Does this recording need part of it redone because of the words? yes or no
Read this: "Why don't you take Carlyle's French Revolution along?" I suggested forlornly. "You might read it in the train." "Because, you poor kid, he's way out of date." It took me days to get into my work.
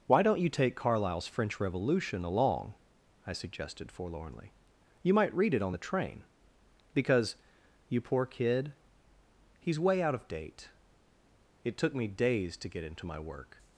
yes